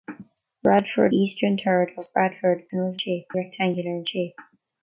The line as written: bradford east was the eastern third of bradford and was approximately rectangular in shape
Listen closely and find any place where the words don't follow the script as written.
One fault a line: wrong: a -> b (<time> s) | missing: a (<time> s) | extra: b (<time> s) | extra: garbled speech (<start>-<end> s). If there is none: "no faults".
missing: east was the (1.1 s)
wrong: approximately -> shape (3.0 s)